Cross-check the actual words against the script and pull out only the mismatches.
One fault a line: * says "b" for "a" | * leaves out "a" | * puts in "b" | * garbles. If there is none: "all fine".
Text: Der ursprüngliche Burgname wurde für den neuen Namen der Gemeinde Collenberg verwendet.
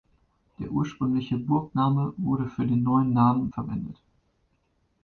* leaves out "der Gemeinde Collenberg"